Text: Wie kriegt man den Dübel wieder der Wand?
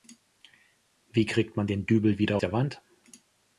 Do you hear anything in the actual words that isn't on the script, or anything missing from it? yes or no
no